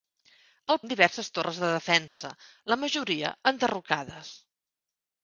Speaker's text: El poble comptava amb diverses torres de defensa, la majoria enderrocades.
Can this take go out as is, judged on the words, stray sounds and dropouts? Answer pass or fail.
fail